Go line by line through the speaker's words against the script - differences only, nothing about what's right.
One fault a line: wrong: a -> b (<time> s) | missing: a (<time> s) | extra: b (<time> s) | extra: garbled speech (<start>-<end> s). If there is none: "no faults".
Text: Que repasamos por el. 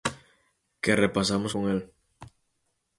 wrong: por -> con (1.5 s)